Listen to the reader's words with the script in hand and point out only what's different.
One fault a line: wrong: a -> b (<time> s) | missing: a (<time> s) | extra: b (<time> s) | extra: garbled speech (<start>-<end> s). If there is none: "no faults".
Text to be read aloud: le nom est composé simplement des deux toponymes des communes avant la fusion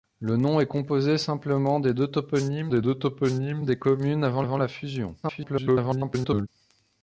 extra: deux toponymes des (2.8 s)
extra: avant (4.4 s)
extra: garbled speech (5.2-6.5 s)